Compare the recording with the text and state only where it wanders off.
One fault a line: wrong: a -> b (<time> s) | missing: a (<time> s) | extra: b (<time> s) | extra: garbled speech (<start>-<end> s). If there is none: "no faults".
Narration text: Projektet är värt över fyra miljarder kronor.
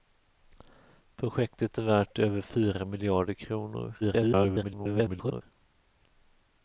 extra: garbled speech (4.0-5.4 s)